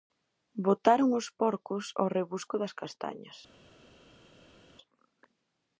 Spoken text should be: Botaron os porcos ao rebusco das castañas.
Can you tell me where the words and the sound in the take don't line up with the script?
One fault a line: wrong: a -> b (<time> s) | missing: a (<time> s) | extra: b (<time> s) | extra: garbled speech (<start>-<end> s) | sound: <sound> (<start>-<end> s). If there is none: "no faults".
no faults